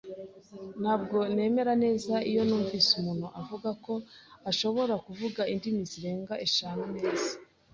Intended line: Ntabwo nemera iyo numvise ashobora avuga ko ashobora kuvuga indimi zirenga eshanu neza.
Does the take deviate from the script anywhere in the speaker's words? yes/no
yes